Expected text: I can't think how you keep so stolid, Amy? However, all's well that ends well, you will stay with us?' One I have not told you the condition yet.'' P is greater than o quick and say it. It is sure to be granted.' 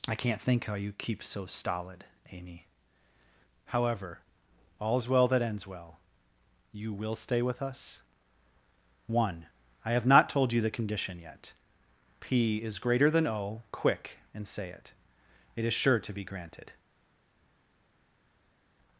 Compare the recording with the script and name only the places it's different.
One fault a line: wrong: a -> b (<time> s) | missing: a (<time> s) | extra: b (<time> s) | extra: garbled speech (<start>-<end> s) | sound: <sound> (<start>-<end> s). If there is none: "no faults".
no faults